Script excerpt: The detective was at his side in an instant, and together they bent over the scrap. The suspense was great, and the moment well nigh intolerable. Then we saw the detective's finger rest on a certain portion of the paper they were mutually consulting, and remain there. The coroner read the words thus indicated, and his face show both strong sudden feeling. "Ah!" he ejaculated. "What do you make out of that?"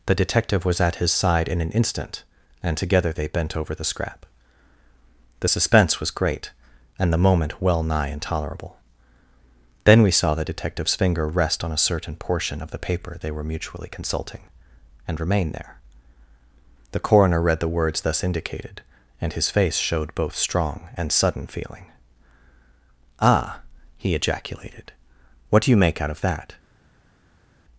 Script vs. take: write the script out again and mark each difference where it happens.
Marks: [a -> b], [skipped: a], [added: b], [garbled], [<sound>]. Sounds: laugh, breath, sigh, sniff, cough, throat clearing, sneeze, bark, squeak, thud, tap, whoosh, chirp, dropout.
The detective was at his side in an instant, and together they bent over the scrap. The suspense was great, and the moment well nigh intolerable. Then we saw the detective's finger rest on a certain portion of the paper they were mutually consulting, and remain there. The coroner read the words thus indicated, and his face [show -> showed] both strong [added: and] sudden feeling. "Ah!" he ejaculated. "What do you make out of that?"